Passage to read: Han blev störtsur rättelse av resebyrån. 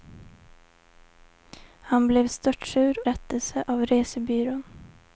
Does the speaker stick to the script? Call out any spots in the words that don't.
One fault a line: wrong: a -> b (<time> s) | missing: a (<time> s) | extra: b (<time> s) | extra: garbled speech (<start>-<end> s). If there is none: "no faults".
no faults